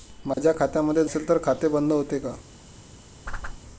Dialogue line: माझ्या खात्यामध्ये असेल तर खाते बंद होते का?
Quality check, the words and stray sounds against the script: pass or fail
fail